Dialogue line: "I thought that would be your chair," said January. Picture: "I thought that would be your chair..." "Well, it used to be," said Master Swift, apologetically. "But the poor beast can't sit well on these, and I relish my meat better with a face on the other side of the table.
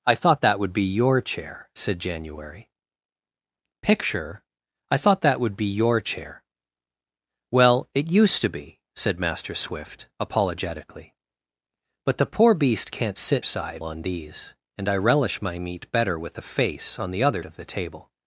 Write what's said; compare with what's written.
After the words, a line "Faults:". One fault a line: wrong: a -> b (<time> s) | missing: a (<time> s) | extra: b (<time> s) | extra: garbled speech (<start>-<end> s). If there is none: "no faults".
"I thought that would be your chair," said January. Picture: "I thought that would be your chair..." "Well, it used to be," said Master Swift, apologetically. "But the poor beast can't sit side on these, and I relish my meat better with a face on the other of the table.
Faults:
wrong: well -> side (13.4 s)
missing: side (17.4 s)